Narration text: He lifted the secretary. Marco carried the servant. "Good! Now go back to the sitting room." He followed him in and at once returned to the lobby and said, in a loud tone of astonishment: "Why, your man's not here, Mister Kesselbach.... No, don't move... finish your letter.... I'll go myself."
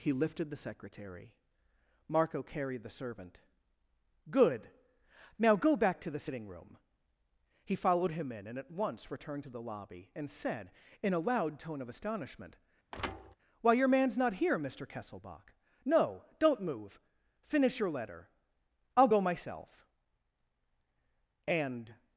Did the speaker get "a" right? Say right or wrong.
right